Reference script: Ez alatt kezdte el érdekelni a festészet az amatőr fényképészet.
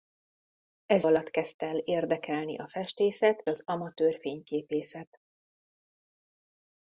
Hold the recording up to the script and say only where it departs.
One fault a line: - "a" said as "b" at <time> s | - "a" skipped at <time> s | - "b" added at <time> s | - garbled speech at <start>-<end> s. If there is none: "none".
none